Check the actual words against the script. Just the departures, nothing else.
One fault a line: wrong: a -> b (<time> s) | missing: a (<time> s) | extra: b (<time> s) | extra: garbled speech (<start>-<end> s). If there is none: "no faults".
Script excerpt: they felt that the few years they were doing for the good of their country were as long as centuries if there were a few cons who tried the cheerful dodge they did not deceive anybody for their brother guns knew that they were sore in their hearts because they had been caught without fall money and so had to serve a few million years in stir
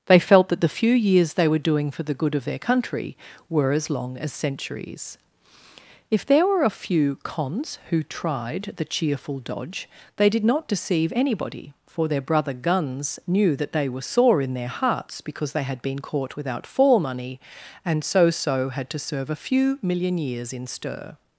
extra: so (18.3 s)